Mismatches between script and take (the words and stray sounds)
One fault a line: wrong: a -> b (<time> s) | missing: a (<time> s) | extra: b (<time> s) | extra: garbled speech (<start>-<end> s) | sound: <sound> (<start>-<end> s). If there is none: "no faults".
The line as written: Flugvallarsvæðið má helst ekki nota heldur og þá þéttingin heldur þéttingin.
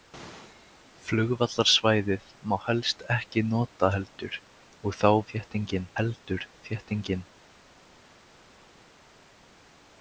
no faults